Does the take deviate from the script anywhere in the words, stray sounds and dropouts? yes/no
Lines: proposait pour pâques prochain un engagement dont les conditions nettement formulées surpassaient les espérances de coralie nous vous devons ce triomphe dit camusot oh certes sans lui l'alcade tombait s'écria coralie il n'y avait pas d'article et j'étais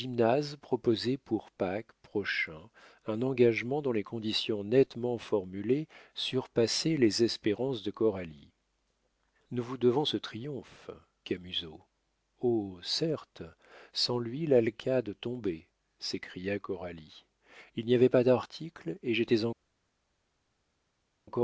yes